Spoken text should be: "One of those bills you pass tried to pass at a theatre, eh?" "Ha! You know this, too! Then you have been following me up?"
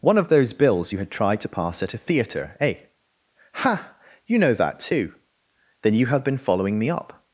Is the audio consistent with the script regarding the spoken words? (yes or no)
no